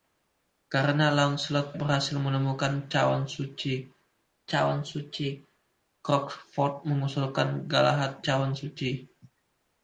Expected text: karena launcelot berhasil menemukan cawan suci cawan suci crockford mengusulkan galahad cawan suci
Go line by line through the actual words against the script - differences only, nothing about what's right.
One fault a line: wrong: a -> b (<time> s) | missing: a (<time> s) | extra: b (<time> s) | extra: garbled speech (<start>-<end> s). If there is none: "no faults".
no faults